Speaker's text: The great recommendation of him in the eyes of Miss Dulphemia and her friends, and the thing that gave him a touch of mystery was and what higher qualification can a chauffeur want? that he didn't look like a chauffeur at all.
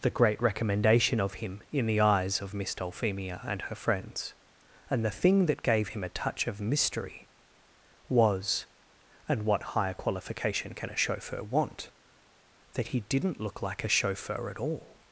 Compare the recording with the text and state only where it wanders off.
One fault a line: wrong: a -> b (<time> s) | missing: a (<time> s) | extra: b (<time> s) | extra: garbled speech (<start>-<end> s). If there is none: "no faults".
no faults